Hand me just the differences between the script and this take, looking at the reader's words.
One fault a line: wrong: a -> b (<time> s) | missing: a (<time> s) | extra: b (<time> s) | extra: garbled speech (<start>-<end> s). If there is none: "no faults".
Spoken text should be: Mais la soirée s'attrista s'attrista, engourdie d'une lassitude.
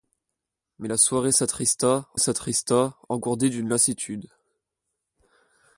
no faults